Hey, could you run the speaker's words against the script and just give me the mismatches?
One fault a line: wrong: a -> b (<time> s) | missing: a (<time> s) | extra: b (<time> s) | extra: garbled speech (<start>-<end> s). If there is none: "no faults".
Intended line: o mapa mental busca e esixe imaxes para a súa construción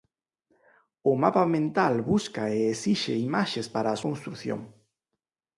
missing: súa (4.0 s)